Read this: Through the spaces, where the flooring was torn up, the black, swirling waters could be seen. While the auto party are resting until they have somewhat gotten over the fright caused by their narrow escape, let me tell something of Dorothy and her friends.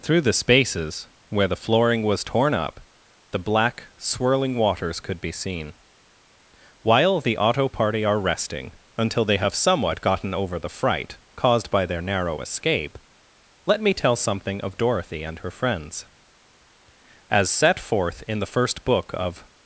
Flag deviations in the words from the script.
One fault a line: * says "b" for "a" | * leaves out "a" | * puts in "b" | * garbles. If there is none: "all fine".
* puts in "As set forth in the first book of"